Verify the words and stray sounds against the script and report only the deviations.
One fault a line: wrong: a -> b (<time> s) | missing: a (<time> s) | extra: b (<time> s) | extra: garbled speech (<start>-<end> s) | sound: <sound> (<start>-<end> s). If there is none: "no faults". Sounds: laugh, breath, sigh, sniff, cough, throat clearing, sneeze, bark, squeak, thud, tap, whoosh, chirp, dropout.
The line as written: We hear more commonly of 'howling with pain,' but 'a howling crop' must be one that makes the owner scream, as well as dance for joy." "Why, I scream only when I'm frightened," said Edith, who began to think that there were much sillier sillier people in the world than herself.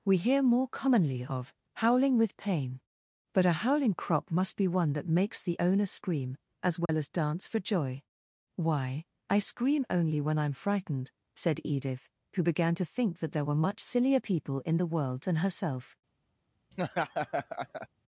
sound: dropout (6.9-6.9 s)
missing: sillier (14.2 s)
sound: laugh (16.7-17.9 s)